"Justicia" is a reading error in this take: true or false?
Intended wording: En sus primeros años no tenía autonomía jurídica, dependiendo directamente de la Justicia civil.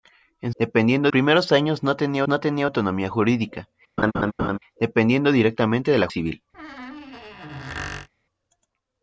true